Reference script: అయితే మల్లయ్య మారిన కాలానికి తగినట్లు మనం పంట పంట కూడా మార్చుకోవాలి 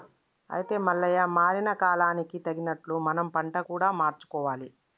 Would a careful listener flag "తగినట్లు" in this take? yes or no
no